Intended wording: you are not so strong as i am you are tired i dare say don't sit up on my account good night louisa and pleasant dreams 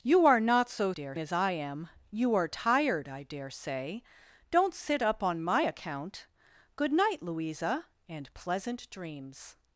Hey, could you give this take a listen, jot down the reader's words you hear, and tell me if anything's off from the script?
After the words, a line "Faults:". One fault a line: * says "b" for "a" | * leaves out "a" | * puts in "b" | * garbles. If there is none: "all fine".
you are not so dare as i am you are tired i dare say don't sit up on my account good night louisa and pleasant dreams
Faults:
* says "dare" for "strong"